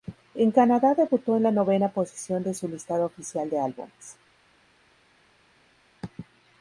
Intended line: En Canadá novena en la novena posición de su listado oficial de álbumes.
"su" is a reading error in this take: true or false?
false